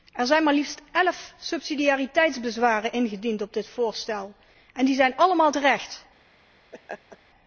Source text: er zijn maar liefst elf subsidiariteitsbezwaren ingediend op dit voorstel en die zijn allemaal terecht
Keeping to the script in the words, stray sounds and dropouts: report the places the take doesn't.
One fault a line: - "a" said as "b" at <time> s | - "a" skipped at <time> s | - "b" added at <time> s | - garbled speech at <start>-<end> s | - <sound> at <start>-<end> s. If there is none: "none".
- laugh at 6.7-7.2 s